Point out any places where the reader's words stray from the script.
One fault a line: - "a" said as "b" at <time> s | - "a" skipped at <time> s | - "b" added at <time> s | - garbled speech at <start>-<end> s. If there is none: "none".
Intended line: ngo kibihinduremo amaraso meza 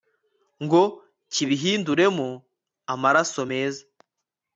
none